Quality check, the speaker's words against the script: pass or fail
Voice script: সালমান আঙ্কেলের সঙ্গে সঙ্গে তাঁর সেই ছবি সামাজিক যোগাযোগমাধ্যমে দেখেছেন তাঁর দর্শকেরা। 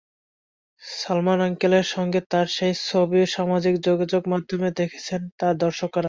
fail